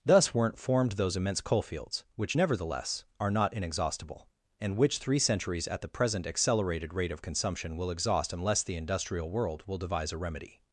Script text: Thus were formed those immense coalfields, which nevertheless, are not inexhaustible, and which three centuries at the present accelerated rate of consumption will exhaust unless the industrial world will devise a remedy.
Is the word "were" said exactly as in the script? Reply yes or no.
no